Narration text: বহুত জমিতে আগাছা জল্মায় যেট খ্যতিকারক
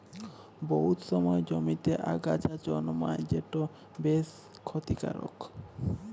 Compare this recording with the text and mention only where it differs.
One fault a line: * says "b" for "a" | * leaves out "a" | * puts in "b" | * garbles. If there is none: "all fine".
* puts in "সময়"
* puts in "বেশ"